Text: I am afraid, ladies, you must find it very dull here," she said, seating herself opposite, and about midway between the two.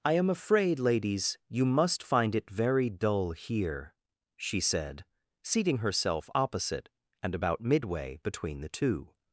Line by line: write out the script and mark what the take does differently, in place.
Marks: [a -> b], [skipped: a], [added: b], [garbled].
I am afraid, ladies, you must find it very dull here," she said, seating herself opposite, and about midway between the two.